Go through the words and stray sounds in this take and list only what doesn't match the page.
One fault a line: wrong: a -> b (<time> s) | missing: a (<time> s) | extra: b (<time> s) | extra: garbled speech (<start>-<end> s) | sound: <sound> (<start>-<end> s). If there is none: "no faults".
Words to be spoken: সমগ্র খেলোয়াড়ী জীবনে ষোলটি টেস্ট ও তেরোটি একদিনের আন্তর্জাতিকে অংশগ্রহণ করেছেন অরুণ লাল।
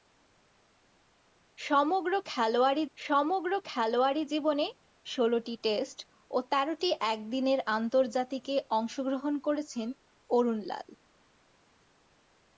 extra: সমগ্র খেলোয়াড়ী (3.0 s)